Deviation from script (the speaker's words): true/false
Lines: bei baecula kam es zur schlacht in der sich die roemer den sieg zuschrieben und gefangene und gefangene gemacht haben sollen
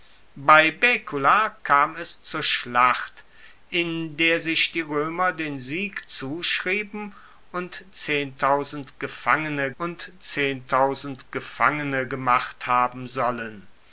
false